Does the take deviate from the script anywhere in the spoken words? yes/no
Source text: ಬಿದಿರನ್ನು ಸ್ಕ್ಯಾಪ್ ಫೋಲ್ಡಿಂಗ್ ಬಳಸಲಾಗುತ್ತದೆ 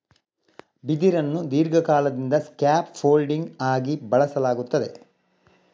yes